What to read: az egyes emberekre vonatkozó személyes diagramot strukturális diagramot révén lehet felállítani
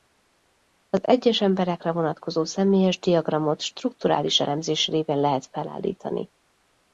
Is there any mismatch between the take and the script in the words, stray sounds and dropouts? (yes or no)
yes